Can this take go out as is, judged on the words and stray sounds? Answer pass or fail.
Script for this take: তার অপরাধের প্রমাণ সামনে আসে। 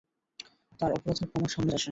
pass